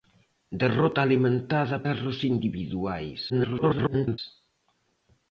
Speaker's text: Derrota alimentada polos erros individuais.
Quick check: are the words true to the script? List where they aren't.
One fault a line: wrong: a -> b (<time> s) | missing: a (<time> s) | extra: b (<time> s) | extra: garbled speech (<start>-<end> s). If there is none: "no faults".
missing: polos (1.8 s)
extra: garbled speech (3.3-4.2 s)